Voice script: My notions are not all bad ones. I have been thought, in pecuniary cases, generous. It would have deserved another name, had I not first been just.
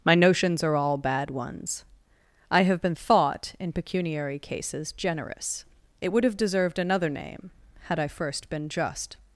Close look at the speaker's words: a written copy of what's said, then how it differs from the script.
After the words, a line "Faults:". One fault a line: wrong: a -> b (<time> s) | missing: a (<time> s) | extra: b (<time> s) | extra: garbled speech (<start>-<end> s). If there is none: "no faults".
My notions are all bad ones. I have been thought, in pecuniary cases, generous. It would have deserved another name, had I first been just.
Faults:
missing: not (0.8 s)
missing: not (8.1 s)